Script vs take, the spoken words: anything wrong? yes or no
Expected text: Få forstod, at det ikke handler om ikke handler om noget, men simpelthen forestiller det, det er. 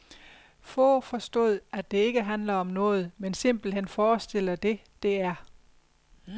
yes